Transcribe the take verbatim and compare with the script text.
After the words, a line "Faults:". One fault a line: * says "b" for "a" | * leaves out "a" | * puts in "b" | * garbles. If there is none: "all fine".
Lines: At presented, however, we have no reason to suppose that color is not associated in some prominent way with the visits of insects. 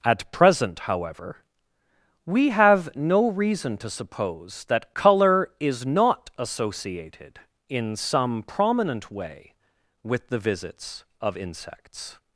At present, however, we have no reason to suppose that color is not associated in some prominent way with the visits of insects.
Faults:
* says "present" for "presented"